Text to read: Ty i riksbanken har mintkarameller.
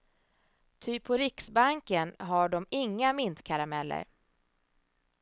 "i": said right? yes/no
no